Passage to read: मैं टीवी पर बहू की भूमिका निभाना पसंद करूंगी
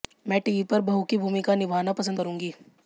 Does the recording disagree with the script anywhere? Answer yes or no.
no